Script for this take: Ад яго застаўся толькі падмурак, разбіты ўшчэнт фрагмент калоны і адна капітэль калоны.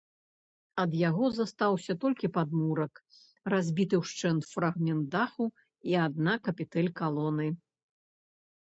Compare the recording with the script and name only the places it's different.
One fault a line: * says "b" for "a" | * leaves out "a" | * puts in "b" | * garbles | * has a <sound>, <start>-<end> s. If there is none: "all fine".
* says "даху" for "калоны"